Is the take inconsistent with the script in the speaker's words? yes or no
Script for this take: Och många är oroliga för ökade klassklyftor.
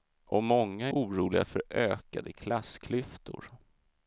yes